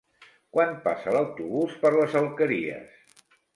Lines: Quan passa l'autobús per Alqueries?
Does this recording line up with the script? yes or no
no